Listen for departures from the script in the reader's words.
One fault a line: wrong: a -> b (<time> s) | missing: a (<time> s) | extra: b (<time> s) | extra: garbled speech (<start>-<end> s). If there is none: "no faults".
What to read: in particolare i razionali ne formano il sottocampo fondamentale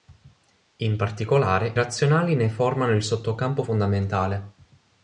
missing: i (1.8 s)